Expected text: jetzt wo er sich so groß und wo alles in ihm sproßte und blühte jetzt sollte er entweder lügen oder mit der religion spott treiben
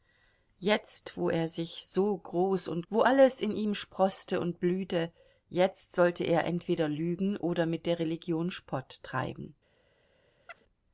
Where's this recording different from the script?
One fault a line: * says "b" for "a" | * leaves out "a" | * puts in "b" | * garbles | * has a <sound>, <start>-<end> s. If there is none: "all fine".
* has a chirp, 10.5-10.6 s